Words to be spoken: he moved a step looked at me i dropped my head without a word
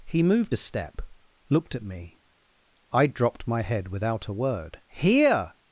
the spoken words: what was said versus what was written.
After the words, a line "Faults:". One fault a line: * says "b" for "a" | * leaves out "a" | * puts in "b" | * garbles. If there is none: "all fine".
he moved a step looked at me i dropped my head without a word here
Faults:
* puts in "here"